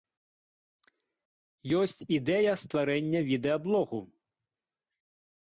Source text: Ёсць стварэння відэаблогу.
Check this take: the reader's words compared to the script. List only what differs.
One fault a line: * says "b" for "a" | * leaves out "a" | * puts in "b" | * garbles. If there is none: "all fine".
* puts in "ідэя"